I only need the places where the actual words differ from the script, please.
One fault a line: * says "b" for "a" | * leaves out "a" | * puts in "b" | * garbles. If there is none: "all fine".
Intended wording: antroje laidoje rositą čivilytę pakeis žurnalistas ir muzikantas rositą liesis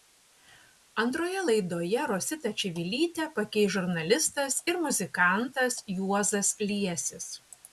* says "juozas" for "rositą"